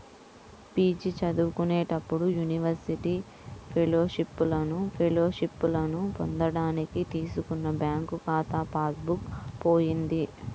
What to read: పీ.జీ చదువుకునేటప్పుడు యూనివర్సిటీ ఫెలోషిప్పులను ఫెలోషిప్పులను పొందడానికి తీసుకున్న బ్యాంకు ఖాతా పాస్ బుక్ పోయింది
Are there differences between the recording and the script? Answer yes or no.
no